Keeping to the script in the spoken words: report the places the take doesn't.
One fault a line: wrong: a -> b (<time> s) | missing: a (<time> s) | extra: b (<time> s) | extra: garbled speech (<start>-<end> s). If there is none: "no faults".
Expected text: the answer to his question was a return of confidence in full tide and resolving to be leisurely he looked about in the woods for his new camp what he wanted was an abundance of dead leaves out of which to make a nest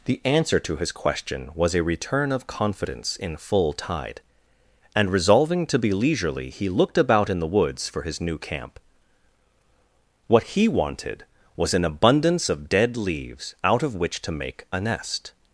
no faults